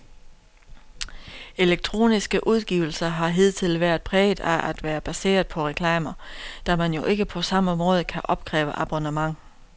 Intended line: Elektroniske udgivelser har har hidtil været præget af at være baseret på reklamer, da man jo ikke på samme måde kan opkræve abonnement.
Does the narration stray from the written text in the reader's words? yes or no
yes